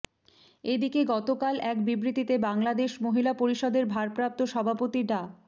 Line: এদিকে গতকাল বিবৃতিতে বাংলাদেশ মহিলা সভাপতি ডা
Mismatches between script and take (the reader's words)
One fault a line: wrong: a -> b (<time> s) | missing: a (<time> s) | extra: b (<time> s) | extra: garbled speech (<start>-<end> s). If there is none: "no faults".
extra: এক (1.6 s)
extra: পরিষদের ভারপ্রাপ্ত (3.3 s)